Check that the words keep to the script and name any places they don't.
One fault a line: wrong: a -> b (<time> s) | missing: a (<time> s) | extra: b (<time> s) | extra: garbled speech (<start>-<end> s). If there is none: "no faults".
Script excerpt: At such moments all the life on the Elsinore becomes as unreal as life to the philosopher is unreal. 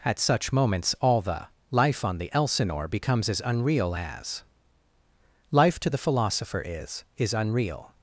extra: is (7.2 s)